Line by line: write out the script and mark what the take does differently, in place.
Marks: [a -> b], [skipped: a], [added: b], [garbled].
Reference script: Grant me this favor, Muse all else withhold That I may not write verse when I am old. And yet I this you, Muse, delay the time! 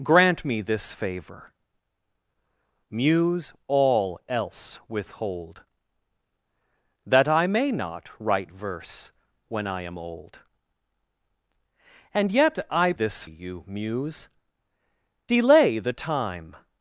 Grant me this favor, Muse all else withhold That I may not write verse when I am old. And yet I this you, Muse, delay the time!